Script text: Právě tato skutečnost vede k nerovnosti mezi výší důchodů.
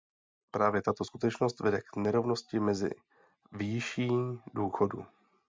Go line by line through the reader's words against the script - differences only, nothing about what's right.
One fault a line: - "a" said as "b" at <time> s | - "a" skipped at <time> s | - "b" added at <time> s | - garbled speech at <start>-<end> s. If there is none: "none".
none